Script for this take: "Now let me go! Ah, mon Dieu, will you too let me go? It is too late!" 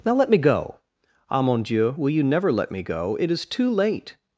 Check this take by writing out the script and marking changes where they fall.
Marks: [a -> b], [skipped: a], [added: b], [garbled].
"Now let me go! Ah, mon Dieu, will you [too -> never] let me go? It is too late!"